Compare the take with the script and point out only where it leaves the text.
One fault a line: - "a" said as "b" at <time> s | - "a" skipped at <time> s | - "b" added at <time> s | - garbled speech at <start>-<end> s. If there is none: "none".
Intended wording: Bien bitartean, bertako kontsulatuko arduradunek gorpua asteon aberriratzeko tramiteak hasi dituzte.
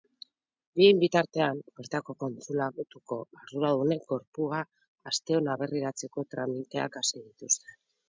none